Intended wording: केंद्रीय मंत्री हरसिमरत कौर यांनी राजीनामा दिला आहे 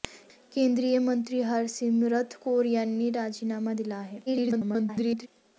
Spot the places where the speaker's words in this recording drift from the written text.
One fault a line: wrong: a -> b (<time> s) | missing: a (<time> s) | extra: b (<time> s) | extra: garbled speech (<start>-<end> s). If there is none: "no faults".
extra: garbled speech (4.3-5.3 s)